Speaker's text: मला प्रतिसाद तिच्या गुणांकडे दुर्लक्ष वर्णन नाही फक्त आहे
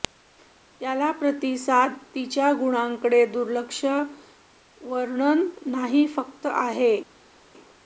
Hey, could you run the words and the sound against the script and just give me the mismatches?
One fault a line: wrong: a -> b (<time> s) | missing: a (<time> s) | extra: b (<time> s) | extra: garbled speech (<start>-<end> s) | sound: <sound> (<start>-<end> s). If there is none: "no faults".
wrong: मला -> त्याला (0.8 s)